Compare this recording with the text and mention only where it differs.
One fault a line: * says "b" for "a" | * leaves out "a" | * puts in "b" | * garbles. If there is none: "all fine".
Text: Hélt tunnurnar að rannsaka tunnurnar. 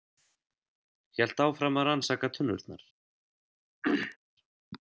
* says "áfram" for "tunnurnar"